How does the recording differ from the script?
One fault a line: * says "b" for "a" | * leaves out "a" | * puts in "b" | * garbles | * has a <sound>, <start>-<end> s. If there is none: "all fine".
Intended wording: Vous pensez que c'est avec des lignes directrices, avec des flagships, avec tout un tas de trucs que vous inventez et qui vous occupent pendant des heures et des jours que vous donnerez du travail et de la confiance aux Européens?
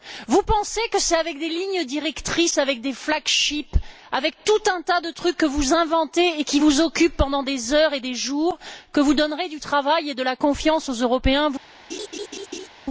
* has a laugh, 11.9-12.7 s